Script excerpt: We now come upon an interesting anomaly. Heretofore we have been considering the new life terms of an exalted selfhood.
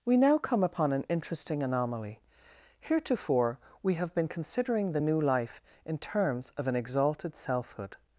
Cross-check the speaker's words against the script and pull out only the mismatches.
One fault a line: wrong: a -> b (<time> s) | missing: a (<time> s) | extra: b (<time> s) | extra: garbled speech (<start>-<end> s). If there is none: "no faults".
extra: in (5.8 s)